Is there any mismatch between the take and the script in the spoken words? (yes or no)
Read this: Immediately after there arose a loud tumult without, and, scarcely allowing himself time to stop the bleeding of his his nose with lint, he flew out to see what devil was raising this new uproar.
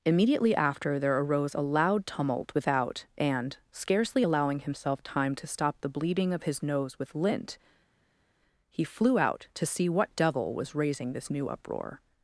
yes